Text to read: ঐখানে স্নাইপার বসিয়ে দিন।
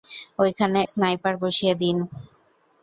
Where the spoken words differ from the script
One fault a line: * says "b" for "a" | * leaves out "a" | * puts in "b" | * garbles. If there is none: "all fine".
all fine